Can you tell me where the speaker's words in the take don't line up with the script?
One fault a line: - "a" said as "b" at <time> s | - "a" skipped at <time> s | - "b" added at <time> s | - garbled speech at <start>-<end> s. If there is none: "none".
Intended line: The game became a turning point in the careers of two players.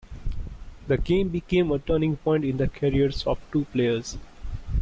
none